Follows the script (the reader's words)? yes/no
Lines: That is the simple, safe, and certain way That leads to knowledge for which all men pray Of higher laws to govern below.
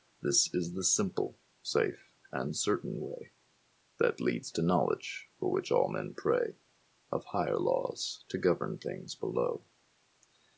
no